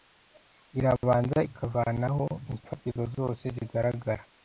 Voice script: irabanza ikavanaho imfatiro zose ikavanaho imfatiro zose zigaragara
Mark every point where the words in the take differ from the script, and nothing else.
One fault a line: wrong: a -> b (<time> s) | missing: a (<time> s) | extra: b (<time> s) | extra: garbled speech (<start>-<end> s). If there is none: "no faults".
missing: ikavanaho imfatiro zose (3.4 s)